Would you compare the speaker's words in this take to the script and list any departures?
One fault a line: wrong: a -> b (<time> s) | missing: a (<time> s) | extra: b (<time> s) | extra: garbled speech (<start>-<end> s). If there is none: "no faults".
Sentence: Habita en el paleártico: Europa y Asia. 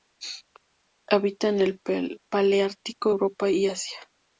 no faults